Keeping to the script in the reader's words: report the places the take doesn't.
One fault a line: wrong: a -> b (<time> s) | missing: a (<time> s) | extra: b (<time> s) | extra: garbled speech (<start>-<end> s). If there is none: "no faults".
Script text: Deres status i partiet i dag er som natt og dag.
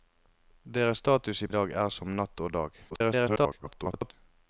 missing: partiet (1.5 s)
extra: garbled speech (2.9-4.1 s)